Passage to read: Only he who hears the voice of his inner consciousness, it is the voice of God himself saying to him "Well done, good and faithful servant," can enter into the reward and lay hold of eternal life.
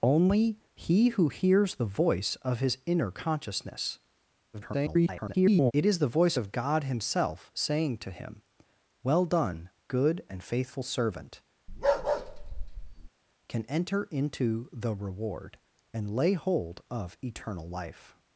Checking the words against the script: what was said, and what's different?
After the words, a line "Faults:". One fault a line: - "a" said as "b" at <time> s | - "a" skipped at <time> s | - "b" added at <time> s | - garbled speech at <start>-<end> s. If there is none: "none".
Only he who hears the voice of his inner consciousness, [garbled] it is the voice of God himself saying to him "Well done, good and faithful servant," can enter into the reward and lay hold of eternal life.
Faults:
- garbled speech at 4.5-5.7 s